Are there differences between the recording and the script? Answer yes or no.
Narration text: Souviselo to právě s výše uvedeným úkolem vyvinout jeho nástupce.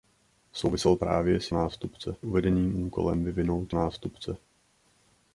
yes